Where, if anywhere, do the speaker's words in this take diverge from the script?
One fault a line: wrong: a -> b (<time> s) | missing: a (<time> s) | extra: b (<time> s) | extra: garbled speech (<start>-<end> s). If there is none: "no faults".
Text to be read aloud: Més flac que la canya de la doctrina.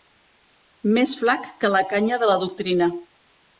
no faults